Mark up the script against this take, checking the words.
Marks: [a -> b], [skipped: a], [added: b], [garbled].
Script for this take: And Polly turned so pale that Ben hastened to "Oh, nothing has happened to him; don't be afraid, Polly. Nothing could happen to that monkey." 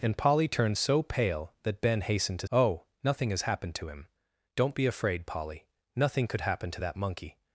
And Polly turned so pale that Ben hastened to "Oh, nothing has happened to him; don't be afraid, Polly. Nothing could happen to that monkey."